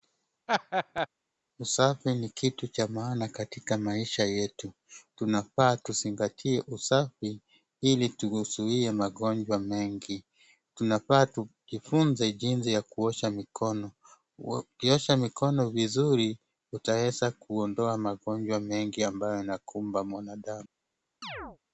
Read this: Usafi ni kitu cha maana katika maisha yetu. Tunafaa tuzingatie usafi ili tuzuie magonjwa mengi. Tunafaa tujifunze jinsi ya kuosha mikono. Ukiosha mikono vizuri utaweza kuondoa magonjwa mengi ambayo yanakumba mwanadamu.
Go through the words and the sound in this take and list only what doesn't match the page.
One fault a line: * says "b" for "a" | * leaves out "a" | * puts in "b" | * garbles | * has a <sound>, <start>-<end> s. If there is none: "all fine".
* has a laugh, 0.5-1.1 s
* has a chirp, 21.2-21.6 s